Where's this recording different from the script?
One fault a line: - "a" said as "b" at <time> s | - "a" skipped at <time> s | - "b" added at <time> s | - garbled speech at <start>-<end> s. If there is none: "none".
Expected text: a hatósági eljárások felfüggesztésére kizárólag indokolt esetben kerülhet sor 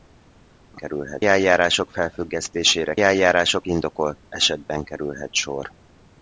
- "hatósági" said as "kerülhet" at 0.7 s
- "kizárólag" said as "eljárások" at 3.0 s